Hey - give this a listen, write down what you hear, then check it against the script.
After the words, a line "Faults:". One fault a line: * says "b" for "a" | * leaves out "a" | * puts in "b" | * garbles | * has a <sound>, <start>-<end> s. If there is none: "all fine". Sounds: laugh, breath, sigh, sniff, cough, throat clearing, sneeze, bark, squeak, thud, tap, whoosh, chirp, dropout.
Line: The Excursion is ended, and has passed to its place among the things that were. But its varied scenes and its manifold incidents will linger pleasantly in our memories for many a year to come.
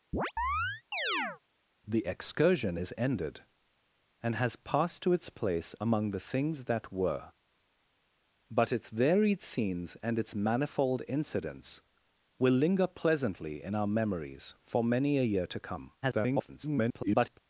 The Excursion is ended, and has passed to its place among the things that were. But its varied scenes and its manifold incidents will linger pleasantly in our memories for many a year to come. [garbled]
Faults:
* has a chirp, 0.1-1.4 s
* garbles